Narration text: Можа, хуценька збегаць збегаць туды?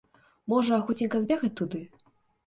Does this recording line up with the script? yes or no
no